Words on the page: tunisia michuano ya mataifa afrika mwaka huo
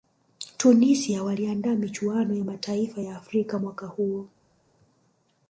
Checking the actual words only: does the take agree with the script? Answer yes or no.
no